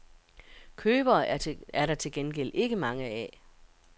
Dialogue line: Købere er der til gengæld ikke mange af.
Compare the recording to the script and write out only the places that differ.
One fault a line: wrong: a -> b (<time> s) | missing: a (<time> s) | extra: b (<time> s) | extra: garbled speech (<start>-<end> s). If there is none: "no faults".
no faults